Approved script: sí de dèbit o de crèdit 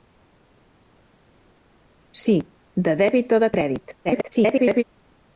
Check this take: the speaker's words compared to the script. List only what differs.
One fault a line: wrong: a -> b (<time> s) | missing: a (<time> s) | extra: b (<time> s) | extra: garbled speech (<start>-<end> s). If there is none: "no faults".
extra: garbled speech (4.0-4.8 s)